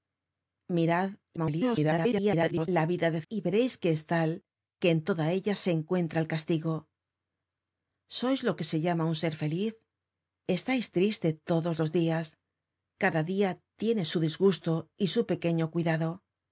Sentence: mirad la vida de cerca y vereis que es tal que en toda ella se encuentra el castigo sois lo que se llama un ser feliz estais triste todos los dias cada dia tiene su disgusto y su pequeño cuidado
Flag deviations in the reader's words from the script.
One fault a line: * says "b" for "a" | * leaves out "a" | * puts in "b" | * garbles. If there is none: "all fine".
* garbles
* leaves out "cerca"